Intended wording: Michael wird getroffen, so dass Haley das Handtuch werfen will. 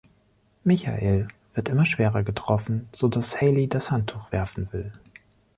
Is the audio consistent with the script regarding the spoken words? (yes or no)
no